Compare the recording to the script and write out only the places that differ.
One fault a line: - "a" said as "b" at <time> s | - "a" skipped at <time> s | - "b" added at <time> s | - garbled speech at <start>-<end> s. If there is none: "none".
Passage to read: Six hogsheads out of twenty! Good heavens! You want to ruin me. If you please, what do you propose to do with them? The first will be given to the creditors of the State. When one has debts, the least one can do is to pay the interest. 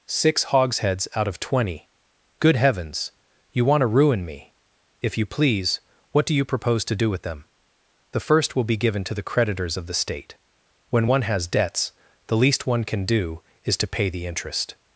none